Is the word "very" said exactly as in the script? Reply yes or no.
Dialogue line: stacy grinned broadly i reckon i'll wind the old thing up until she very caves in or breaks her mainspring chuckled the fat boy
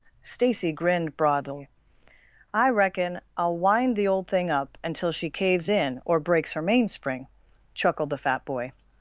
no